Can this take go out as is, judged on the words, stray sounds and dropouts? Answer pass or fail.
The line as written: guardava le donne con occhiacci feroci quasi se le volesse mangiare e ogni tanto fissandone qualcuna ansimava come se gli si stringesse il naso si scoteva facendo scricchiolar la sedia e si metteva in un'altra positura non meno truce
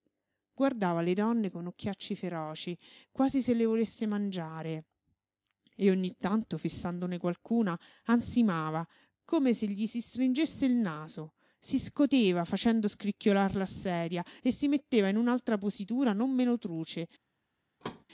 fail